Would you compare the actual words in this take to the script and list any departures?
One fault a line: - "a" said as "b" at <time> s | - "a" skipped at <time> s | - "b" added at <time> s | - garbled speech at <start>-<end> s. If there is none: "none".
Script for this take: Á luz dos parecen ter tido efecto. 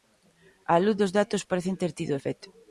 - "datos" added at 1.2 s